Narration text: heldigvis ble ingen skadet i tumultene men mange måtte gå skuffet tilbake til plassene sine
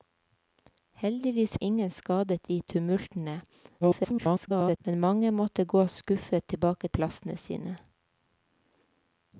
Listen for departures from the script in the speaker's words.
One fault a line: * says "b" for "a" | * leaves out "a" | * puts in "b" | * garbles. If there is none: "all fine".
* leaves out "ble"
* garbles
* leaves out "til"